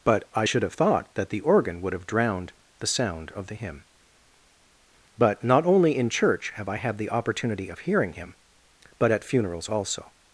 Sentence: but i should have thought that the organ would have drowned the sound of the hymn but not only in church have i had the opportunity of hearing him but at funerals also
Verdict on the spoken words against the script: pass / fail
pass